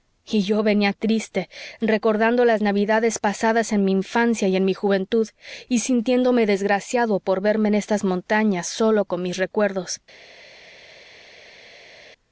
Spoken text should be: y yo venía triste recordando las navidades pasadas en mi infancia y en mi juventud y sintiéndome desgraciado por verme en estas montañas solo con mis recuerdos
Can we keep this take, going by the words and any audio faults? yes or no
yes